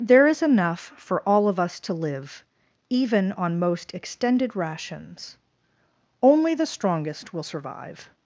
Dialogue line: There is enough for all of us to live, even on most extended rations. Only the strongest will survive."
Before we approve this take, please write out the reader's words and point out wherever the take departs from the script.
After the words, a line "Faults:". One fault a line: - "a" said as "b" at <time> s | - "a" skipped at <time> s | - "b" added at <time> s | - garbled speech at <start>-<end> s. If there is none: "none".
There is enough for all of us to live, even on most extended rations. Only the strongest will survive."
Faults:
none